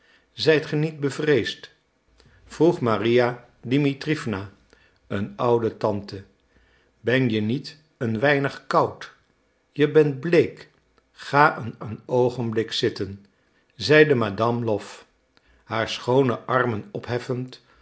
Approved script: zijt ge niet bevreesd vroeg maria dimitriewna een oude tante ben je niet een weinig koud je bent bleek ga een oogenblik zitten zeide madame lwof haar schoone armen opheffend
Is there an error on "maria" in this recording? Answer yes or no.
no